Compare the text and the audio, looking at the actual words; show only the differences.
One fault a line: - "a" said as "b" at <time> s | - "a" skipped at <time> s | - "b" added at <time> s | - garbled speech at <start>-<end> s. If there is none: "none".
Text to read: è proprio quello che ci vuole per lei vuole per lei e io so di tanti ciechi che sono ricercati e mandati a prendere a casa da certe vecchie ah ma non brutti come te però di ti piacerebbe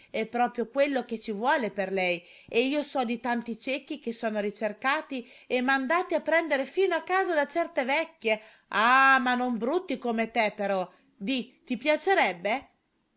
- "vuole per lei" skipped at 2.2 s
- "fino" added at 6.7 s